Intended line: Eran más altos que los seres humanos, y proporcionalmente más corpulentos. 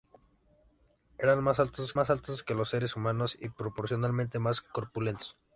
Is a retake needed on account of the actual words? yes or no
yes